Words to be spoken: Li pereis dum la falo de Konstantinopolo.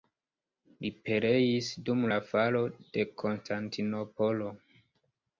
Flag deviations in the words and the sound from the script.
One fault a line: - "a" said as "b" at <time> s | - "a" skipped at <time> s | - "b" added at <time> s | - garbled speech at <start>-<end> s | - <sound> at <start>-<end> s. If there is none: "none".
none